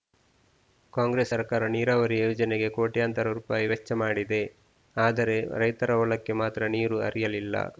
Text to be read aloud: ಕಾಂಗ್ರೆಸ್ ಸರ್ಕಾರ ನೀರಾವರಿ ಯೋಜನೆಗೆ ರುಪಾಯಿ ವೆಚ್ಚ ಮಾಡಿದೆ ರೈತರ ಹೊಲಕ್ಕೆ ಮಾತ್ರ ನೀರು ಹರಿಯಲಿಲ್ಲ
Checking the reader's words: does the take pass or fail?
fail